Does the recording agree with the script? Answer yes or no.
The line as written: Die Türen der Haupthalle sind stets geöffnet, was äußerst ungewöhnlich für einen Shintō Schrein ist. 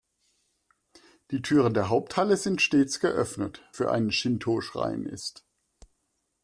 no